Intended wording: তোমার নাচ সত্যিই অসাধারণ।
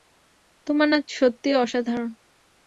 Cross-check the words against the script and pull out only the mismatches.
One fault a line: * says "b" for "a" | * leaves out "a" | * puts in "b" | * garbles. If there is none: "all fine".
all fine